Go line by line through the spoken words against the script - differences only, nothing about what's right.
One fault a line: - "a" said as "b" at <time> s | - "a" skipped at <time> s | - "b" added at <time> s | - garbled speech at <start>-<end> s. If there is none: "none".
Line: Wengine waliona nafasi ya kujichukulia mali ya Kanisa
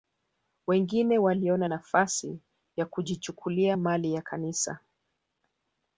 none